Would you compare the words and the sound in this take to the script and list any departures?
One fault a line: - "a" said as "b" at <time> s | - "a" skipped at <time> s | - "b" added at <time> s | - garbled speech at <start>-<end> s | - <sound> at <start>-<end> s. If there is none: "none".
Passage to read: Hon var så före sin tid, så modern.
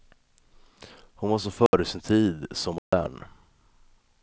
- dropout at 1.7-1.7 s
- dropout at 2.8-2.9 s